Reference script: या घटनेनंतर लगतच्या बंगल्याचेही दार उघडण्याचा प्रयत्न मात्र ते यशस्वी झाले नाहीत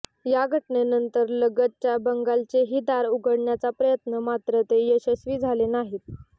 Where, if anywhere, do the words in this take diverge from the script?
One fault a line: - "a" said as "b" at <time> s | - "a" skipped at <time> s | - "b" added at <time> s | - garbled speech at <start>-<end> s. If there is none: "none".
none